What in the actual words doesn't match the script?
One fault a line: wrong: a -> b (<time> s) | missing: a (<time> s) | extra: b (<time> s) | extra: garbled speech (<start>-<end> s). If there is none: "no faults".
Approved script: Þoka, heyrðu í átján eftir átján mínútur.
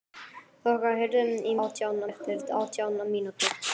no faults